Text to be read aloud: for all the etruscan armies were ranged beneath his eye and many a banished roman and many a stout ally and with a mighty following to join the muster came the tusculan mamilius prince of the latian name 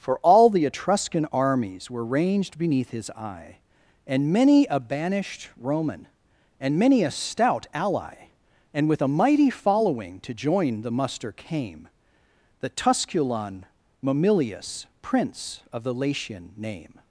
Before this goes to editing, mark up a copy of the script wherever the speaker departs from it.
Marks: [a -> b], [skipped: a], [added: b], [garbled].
for all the etruscan armies were ranged beneath his eye and many a banished roman and many a stout ally and with a mighty following to join the muster came the tusculan mamilius prince of the latian name